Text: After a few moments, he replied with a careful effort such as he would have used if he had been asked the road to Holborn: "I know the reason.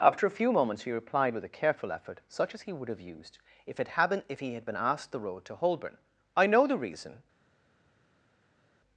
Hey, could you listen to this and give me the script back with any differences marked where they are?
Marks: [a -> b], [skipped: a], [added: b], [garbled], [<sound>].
After a few moments, he replied with a careful effort such as he would have used if [added: it had been if] he had been asked the road to Holborn: "I know the reason.